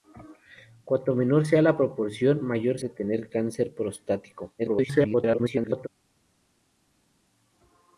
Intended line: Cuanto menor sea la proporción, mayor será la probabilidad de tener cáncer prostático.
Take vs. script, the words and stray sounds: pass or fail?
fail